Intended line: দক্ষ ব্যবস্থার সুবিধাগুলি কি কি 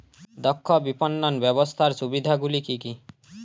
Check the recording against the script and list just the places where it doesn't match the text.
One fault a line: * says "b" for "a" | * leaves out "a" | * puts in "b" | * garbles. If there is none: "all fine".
* puts in "বিপণন"